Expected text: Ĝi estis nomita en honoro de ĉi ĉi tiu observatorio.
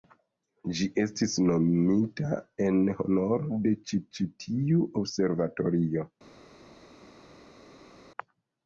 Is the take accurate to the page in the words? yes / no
yes